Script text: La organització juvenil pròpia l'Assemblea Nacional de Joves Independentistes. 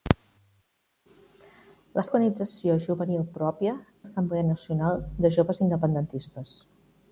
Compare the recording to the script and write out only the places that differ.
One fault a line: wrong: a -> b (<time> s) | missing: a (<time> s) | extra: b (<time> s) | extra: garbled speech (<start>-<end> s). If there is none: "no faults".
no faults